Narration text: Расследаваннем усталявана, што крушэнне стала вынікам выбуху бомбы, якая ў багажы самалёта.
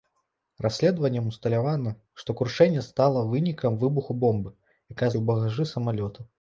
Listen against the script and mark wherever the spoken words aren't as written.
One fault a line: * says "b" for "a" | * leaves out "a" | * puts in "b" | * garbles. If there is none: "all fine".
all fine